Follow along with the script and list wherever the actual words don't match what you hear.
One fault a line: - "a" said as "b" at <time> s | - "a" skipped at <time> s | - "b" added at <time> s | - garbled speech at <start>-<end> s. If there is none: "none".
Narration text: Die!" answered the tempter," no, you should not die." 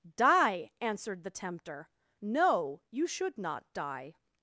none